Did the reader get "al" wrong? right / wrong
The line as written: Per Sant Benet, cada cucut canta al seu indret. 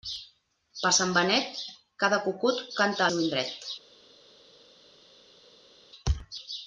wrong